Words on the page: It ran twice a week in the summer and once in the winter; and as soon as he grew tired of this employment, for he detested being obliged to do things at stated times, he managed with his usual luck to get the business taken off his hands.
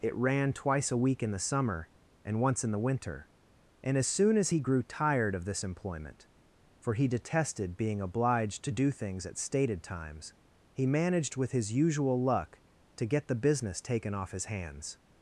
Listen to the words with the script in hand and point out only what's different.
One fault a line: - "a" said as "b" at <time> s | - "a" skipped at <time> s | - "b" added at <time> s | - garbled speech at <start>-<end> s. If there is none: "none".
none